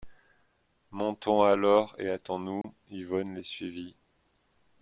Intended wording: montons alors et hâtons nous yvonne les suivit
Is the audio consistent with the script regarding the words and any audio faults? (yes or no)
no